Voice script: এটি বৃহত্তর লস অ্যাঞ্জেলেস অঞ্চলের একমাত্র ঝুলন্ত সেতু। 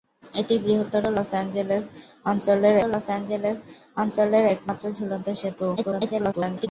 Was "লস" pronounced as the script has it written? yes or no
yes